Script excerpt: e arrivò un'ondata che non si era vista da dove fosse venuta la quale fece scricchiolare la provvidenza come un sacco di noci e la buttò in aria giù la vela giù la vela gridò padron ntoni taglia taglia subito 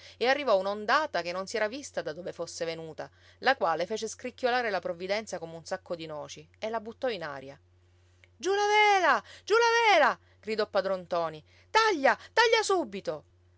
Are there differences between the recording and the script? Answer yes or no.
no